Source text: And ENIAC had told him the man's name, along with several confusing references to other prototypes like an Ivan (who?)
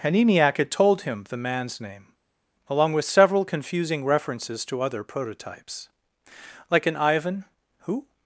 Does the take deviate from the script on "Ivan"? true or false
false